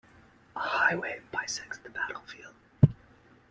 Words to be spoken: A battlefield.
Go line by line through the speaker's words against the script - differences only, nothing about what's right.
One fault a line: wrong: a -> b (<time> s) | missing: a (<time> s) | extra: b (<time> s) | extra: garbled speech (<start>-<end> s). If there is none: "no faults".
extra: highway bisects the (0.6 s)